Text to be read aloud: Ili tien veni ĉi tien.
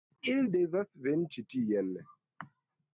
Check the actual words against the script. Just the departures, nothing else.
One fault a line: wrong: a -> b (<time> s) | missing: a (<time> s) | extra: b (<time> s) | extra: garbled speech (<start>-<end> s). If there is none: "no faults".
wrong: tien -> devas (0.5 s)